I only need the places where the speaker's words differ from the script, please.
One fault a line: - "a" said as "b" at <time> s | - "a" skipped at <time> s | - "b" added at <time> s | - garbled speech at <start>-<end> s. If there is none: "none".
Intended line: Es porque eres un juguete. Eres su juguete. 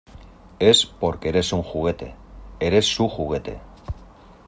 none